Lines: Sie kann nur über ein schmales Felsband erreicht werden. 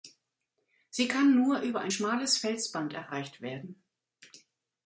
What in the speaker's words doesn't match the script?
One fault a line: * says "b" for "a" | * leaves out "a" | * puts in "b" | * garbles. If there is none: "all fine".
all fine